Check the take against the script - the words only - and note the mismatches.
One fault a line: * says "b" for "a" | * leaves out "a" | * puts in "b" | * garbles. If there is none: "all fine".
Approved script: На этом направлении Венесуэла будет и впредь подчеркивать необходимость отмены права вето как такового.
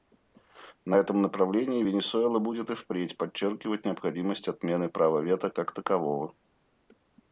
all fine